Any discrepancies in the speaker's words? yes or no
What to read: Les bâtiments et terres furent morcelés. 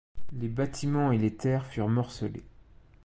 yes